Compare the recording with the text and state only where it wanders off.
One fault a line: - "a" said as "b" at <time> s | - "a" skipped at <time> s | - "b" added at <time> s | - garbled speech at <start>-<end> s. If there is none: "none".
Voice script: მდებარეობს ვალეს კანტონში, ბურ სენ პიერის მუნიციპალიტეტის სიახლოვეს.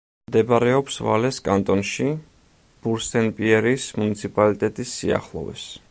none